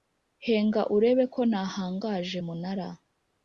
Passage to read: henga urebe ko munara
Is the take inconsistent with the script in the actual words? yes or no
yes